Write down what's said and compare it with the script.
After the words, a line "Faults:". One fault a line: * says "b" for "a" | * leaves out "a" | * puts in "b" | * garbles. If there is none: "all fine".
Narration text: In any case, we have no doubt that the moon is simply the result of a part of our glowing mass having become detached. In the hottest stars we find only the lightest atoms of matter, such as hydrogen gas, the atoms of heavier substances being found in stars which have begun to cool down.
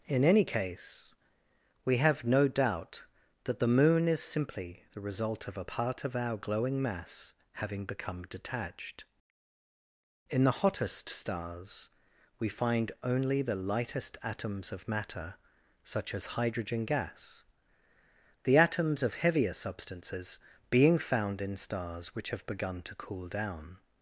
In any case, we have no doubt that the moon is simply the result of a part of our glowing mass having become detached. In the hottest stars we find only the lightest atoms of matter, such as hydrogen gas, the atoms of heavier substances being found in stars which have begun to cool down.
Faults:
all fine